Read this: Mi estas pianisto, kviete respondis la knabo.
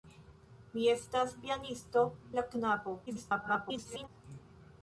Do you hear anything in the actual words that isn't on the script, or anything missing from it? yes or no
yes